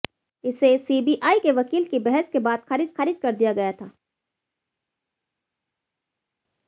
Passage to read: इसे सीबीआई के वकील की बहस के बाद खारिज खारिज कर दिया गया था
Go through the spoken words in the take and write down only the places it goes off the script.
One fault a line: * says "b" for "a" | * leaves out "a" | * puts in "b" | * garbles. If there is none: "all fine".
all fine